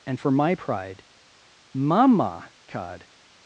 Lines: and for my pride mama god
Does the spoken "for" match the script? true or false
true